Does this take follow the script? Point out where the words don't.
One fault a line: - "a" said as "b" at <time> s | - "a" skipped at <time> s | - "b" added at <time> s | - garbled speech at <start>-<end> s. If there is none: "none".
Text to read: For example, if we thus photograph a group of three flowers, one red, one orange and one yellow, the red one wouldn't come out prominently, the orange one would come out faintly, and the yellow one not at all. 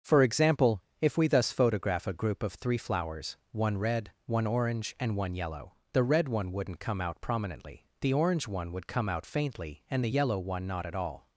none